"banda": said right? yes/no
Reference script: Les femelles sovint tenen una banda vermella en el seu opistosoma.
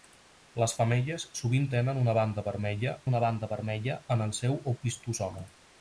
yes